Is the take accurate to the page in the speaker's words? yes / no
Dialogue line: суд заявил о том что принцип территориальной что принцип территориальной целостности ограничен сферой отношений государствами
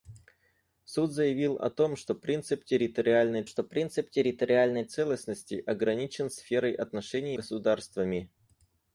yes